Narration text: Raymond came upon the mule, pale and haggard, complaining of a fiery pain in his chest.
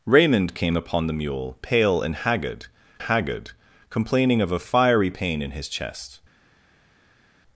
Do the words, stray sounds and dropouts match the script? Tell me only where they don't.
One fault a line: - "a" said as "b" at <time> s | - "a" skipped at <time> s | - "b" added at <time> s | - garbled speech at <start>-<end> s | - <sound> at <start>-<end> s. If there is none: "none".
- "haggard" added at 3.0 s